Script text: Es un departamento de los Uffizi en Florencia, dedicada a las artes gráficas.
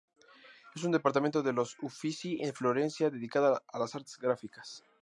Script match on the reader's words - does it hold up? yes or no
yes